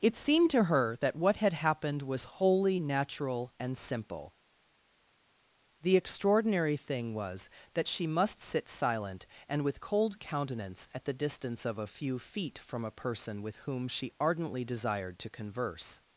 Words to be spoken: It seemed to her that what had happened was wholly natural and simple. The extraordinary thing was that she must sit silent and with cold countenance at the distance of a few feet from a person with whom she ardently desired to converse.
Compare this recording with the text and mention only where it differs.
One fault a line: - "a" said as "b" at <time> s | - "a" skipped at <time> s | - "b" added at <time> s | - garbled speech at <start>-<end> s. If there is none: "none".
none